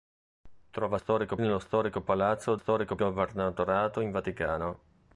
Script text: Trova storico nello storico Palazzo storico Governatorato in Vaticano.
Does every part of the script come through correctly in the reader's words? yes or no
yes